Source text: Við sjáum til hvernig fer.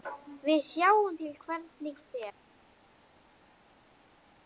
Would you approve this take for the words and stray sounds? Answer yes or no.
yes